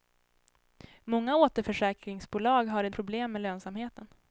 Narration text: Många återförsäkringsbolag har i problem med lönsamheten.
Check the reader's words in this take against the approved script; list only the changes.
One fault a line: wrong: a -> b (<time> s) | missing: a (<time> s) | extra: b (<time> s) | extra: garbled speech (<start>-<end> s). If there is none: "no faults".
no faults